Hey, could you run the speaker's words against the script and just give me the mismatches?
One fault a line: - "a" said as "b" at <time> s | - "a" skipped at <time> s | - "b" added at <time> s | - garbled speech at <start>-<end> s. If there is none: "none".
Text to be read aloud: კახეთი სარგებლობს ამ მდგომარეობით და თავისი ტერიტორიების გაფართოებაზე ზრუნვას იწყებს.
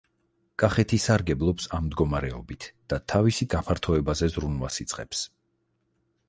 - "ტერიტორიების" skipped at 3.5 s